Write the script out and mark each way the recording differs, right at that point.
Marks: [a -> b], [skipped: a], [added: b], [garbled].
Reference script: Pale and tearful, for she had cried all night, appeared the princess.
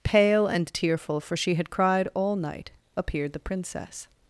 Pale and tearful, for she had cried all night, appeared the princess.